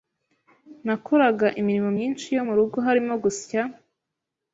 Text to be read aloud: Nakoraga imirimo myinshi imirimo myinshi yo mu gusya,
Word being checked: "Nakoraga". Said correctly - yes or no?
yes